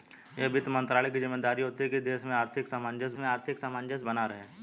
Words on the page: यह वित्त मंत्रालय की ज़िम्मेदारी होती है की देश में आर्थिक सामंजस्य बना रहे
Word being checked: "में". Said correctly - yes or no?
yes